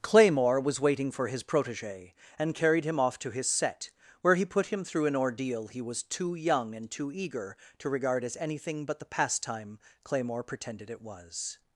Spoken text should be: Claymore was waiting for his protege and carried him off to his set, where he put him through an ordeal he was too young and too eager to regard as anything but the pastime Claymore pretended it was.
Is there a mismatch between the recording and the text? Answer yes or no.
no